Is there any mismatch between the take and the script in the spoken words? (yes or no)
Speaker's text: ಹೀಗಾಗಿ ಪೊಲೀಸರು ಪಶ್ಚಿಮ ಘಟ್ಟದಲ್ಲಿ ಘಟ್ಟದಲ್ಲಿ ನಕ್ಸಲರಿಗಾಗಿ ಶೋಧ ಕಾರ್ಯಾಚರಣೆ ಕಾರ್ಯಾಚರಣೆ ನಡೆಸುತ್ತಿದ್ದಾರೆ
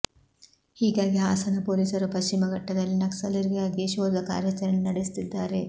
yes